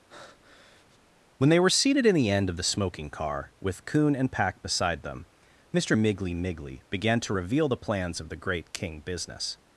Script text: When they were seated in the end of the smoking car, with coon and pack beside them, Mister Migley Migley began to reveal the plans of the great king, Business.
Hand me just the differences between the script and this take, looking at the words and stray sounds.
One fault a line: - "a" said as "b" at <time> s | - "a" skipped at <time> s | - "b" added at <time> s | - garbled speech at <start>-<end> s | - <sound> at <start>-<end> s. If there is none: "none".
- breath at 0.1-1.0 s